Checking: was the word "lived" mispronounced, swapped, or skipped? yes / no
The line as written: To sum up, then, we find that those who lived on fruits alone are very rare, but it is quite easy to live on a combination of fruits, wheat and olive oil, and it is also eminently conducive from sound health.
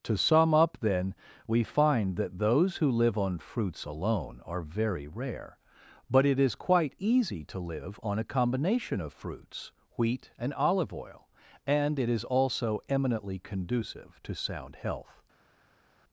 yes